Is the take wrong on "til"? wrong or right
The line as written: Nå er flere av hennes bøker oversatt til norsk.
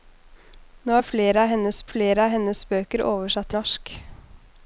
wrong